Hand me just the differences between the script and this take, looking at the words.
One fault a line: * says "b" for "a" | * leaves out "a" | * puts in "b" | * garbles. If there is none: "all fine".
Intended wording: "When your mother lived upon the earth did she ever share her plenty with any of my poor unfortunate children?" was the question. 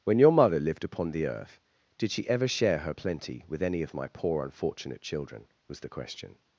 all fine